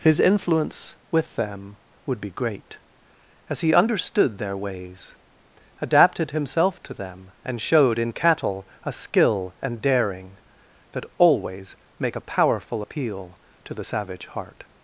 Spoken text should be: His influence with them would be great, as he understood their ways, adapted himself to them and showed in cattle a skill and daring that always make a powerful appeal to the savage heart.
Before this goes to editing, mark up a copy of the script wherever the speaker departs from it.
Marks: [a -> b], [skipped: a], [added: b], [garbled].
His influence with them would be great, as he understood their ways, adapted himself to them and showed in cattle a skill and daring that always make a powerful appeal to the savage heart.